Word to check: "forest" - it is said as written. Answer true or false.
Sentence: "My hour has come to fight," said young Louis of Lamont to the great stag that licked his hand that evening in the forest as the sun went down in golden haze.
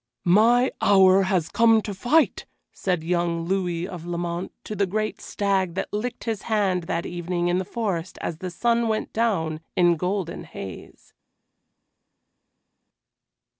true